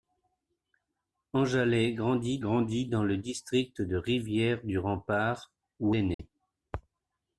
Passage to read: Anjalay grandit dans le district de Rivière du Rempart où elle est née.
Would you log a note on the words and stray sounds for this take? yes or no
yes